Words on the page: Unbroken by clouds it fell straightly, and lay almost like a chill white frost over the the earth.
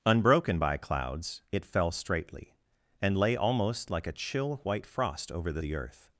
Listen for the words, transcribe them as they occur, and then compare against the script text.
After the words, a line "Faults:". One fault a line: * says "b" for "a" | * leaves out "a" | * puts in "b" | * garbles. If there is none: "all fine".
Unbroken by clouds it fell straightly, and lay almost like a chill white frost over the the earth.
Faults:
all fine